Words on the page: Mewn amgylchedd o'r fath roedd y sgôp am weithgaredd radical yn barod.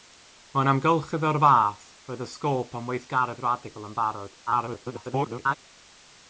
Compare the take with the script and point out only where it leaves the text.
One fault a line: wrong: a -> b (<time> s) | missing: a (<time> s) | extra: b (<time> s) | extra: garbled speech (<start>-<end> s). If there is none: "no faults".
extra: garbled speech (4.5-5.6 s)